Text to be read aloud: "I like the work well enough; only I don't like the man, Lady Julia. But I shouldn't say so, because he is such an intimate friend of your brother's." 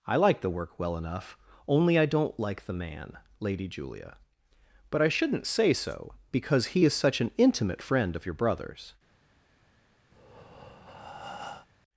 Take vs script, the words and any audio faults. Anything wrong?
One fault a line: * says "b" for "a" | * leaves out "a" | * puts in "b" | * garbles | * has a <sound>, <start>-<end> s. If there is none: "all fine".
* has a breath, 10.1-11.7 s